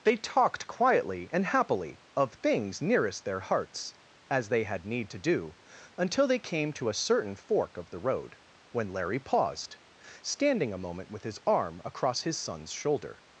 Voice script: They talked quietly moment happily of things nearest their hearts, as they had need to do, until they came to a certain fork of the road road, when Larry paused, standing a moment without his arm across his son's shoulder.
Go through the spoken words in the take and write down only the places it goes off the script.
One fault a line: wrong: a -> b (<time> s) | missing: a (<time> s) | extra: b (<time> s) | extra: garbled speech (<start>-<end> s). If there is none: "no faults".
wrong: moment -> and (1.3 s)
missing: road (8.4 s)
wrong: without -> with (11.1 s)